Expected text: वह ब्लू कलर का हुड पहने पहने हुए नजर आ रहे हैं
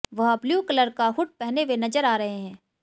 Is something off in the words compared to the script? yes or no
yes